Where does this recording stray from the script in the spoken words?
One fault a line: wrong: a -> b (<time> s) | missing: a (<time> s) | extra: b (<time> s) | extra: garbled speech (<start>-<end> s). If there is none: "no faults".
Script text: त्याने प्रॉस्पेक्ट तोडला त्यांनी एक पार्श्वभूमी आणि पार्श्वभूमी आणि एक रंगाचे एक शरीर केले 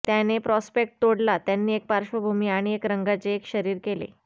missing: पार्श्वभूमी आणि (2.7 s)